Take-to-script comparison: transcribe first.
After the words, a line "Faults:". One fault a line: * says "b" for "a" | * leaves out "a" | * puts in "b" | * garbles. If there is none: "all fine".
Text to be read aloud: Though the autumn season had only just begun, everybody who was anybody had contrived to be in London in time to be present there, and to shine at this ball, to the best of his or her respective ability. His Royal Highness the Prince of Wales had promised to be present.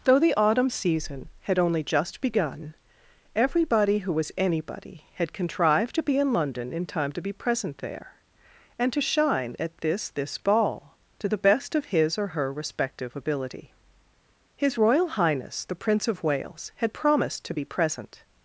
Though the autumn season had only just begun, everybody who was anybody had contrived to be in London in time to be present there, and to shine at this this ball, to the best of his or her respective ability. His Royal Highness the Prince of Wales had promised to be present.
Faults:
* puts in "this"